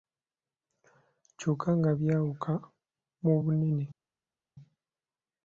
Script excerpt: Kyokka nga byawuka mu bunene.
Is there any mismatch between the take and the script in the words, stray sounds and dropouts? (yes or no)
no